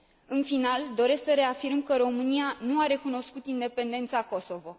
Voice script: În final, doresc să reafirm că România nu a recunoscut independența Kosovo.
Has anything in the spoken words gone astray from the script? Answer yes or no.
no